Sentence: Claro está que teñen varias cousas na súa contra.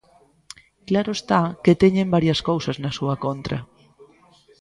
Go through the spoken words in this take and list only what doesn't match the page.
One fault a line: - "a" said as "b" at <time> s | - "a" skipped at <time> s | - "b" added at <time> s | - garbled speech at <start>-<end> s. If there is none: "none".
none